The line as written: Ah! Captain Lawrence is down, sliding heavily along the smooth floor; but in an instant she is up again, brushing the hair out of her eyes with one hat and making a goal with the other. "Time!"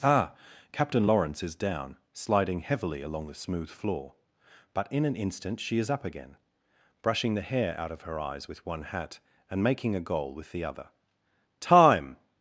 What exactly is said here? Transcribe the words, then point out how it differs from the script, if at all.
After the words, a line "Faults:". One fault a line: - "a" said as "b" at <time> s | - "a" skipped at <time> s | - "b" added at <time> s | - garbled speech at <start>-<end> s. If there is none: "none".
Ah! Captain Lawrence is down, sliding heavily along the smooth floor; but in an instant she is up again, brushing the hair out of her eyes with one hat and making a goal with the other. "Time!"
Faults:
none